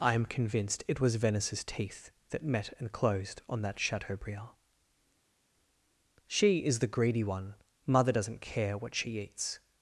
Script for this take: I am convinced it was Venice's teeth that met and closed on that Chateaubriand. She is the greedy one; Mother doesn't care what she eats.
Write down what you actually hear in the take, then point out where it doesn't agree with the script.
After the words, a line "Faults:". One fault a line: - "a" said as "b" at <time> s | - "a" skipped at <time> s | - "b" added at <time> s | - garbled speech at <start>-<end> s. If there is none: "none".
I am convinced it was Venice's teeth that met and closed on that Chateaubriand. She is the greedy one; Mother doesn't care what she eats.
Faults:
none